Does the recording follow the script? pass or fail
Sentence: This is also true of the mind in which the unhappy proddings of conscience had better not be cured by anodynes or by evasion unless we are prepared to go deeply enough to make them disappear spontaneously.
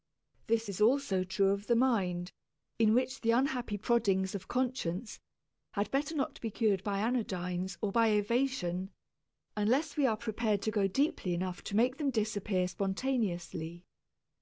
pass